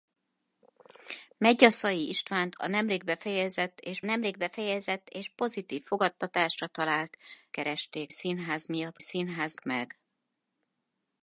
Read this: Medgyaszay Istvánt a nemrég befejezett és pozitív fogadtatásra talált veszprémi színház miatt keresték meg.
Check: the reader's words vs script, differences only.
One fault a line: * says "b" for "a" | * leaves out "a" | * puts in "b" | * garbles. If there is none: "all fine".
* puts in "nemrég befejezett és"
* says "keresték" for "veszprémi"
* says "színház" for "keresték"